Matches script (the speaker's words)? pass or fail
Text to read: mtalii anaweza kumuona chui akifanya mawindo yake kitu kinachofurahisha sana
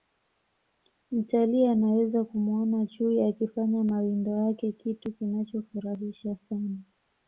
pass